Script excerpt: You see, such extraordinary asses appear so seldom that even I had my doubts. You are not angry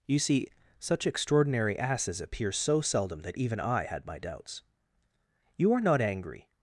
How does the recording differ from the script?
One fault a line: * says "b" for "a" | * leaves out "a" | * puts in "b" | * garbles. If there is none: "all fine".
all fine